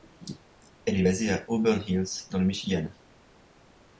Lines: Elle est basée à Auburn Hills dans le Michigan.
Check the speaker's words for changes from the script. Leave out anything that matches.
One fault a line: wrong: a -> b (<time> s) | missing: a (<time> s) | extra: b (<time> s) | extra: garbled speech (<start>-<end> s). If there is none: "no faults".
no faults